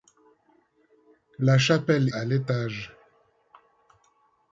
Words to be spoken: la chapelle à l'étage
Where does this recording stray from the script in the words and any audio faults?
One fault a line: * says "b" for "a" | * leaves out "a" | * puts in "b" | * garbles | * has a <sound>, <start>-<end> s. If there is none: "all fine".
all fine